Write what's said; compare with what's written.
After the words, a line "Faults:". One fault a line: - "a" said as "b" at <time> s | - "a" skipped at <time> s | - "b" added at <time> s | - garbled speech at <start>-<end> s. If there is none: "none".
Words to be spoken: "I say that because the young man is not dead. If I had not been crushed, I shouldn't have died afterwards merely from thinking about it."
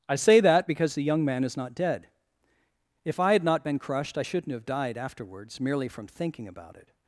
"I say that because the young man is not dead. If I had not been crushed, I shouldn't have died afterwards merely from thinking about it."
Faults:
none